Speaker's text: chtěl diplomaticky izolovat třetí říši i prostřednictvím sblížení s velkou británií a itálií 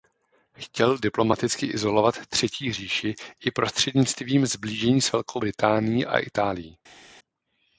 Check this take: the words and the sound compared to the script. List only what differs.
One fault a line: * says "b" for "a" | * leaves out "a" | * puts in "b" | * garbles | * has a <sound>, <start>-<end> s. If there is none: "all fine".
all fine